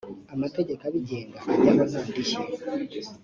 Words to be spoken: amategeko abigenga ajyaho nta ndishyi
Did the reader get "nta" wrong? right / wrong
right